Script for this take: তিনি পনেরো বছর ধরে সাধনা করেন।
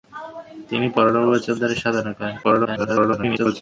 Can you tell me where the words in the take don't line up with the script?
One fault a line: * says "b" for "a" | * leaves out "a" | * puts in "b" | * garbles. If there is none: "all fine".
* garbles